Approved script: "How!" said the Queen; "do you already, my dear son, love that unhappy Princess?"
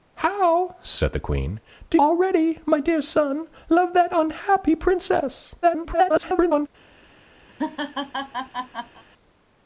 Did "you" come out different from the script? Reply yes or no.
yes